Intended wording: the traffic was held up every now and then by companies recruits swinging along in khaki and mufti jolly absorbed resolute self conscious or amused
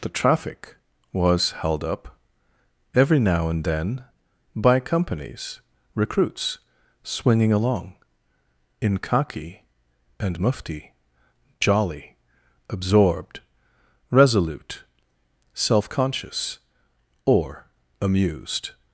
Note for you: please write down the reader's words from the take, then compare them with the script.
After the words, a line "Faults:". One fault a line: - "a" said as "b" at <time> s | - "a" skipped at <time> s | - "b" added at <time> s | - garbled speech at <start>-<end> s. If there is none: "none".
the traffic was held up every now and then by companies recruits swinging along in khaki and mufti jolly absorbed resolute self conscious or amused
Faults:
none